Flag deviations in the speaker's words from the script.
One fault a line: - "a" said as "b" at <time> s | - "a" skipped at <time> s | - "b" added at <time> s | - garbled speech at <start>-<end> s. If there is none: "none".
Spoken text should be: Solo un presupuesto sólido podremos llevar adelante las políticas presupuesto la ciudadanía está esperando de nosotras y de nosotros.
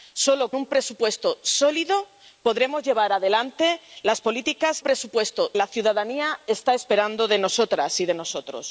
none